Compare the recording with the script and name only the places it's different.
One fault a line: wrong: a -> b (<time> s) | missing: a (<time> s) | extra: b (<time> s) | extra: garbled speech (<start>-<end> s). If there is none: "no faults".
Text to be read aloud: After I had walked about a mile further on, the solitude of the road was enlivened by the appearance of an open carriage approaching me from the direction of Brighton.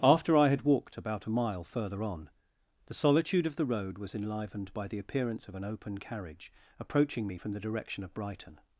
no faults